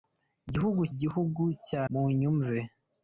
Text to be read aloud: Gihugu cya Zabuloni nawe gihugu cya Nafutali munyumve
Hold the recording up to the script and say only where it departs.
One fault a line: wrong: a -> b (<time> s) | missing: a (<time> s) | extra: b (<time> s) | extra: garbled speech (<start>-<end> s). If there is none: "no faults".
missing: cya Zabuloni nawe (0.8 s)
missing: Nafutali (1.8 s)